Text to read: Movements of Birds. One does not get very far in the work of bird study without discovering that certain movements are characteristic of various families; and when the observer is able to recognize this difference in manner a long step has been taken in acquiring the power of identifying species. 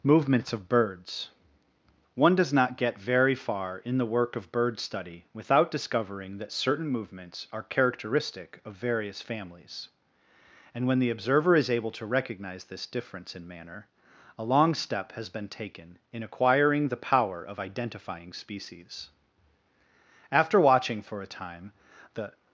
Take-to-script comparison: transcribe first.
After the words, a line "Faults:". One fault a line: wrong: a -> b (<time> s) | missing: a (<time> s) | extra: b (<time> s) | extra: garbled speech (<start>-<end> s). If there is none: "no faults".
Movements of Birds. One does not get very far in the work of bird study without discovering that certain movements are characteristic of various families; and when the observer is able to recognize this difference in manner a long step has been taken in acquiring the power of identifying species. After watching for a time the
Faults:
extra: After watching for a time the (20.3 s)